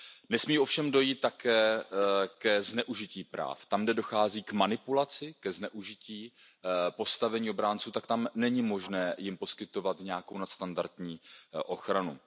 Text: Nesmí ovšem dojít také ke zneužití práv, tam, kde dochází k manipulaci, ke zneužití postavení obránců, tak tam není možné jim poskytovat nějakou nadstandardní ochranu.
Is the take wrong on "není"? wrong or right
right